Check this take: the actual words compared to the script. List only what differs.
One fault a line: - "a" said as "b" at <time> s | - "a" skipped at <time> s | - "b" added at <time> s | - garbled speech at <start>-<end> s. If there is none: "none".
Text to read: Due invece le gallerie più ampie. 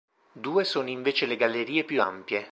- "sono" added at 0.6 s